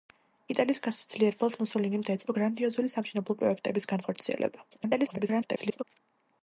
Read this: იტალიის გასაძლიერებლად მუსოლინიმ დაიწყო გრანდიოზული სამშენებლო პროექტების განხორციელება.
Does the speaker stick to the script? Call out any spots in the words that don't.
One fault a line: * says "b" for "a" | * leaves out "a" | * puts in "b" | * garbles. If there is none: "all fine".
* garbles